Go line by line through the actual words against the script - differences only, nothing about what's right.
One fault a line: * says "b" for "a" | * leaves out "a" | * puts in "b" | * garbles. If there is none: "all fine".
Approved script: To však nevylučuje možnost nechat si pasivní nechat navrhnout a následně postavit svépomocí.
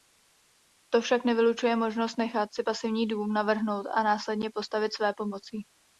* says "dům" for "nechat"